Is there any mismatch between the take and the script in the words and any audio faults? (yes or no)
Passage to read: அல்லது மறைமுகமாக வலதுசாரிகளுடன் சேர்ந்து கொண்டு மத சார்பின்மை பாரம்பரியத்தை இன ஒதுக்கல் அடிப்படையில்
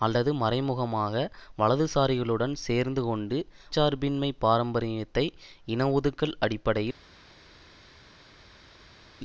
yes